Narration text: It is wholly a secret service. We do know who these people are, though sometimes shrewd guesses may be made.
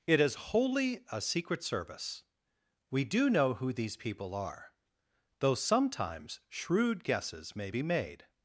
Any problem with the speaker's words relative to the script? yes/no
no